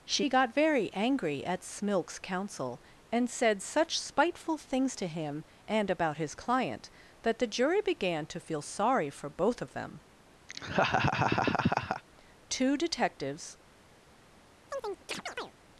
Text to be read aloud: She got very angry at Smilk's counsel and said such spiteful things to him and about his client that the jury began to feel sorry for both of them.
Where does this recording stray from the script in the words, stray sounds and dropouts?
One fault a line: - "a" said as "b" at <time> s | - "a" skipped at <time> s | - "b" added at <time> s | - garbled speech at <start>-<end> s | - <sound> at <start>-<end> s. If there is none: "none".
- laugh at 10.5-12.0 s
- "Two detectives" added at 12.5 s
- chirp at 14.7-15.5 s